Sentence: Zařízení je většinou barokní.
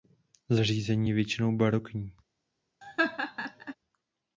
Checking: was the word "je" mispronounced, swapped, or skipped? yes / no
no